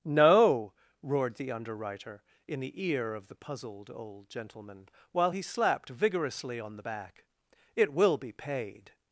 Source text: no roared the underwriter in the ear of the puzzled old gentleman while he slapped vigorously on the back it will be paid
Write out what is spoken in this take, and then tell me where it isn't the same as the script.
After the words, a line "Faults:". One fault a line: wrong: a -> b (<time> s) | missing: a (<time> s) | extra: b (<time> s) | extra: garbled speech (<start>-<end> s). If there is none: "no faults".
no roared the underwriter in the ear of the puzzled old gentleman while he slapped vigorously on the back it will be paid
Faults:
no faults